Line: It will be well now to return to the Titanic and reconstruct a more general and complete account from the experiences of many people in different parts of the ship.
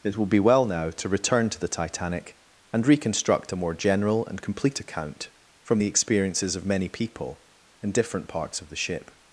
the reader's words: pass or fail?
pass